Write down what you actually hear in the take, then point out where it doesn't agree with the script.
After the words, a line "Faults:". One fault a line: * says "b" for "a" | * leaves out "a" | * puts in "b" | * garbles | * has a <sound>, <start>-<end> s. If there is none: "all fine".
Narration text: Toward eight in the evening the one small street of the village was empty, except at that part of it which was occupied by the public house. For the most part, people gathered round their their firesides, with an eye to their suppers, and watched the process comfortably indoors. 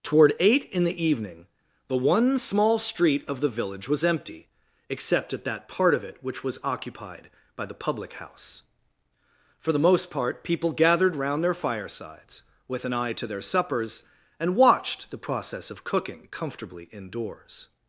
Toward eight in the evening the one small street of the village was empty, except at that part of it which was occupied by the public house. For the most part, people gathered round their firesides, with an eye to their suppers, and watched the process of cooking comfortably indoors.
Faults:
* leaves out "their"
* puts in "of cooking"